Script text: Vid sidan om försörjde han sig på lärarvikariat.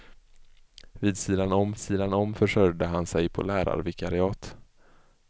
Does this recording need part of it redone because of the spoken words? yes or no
yes